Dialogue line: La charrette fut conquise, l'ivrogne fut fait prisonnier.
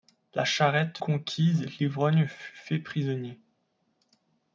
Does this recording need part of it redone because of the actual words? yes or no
yes